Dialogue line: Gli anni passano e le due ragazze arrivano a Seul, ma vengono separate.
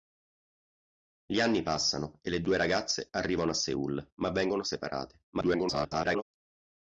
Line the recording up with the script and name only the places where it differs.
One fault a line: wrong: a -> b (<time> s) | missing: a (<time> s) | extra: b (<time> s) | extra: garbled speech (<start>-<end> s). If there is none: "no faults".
extra: garbled speech (5.3-6.2 s)